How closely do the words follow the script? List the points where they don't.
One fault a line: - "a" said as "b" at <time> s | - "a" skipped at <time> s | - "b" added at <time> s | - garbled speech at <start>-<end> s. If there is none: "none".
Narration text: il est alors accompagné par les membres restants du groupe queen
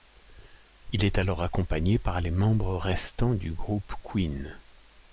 none